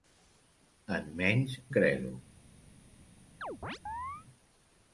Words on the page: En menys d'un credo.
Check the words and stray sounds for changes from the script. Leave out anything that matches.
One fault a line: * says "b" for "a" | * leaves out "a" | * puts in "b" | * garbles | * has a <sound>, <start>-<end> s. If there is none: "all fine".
* leaves out "d'un"
* has a chirp, 3.4-4.3 s